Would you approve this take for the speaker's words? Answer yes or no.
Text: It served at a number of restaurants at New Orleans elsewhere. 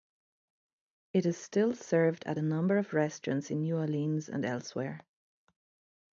no